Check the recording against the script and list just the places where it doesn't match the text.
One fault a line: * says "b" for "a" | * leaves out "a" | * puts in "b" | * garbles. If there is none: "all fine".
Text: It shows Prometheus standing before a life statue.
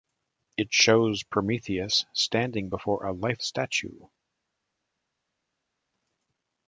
all fine